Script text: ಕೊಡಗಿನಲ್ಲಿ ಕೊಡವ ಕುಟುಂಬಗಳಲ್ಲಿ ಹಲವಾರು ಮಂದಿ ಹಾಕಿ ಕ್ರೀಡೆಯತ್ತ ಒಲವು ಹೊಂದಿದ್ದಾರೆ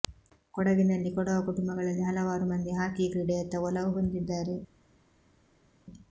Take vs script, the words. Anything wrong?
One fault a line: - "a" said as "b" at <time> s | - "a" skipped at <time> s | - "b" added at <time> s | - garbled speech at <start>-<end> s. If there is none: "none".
none